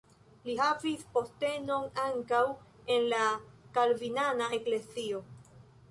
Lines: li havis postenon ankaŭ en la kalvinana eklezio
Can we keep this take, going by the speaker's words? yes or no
yes